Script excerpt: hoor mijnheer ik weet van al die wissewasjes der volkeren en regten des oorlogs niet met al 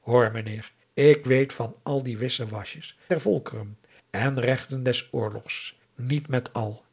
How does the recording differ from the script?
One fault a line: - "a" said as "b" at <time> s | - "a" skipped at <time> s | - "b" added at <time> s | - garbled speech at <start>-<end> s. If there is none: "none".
none